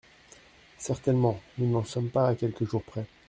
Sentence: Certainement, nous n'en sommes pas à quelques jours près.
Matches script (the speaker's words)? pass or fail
pass